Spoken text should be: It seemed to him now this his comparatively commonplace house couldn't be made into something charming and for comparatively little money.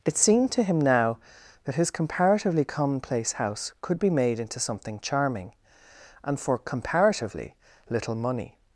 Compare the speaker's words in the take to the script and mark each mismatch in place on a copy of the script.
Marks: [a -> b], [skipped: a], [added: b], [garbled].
It seemed to him now [this -> that] his comparatively commonplace house [couldn't -> could] be made into something charming and for comparatively little money.